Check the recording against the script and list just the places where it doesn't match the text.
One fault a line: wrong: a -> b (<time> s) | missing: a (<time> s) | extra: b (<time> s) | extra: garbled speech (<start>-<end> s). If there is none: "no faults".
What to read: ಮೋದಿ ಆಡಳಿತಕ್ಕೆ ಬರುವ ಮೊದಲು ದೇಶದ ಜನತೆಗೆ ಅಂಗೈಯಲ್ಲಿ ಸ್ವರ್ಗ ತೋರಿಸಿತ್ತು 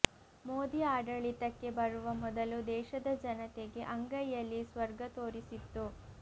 no faults